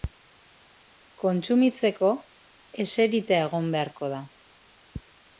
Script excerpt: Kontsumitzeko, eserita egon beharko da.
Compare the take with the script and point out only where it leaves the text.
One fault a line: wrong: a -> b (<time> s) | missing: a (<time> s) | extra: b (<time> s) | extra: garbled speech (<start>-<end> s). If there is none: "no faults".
no faults